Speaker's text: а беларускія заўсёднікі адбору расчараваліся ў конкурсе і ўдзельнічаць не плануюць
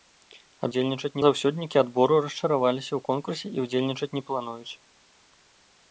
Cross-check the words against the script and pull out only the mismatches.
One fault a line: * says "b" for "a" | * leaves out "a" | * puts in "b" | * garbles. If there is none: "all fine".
* says "ўдзельнічаць" for "беларускія"